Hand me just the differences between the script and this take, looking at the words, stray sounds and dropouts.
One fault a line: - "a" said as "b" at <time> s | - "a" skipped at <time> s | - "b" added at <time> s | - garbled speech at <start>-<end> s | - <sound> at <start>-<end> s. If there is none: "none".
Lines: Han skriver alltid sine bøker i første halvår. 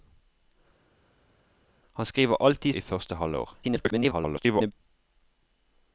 - "sine bøker" skipped at 2.7 s
- garbled speech at 3.6-4.7 s